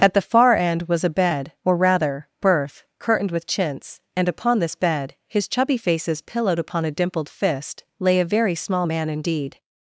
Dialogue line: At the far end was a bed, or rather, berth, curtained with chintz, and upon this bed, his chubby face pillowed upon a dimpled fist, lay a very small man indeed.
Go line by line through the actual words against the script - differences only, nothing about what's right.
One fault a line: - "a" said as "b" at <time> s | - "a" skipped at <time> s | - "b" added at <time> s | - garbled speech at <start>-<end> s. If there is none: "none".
- "face" said as "faces" at 5.8 s